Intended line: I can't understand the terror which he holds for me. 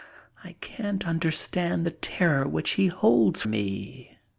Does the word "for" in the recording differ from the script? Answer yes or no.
yes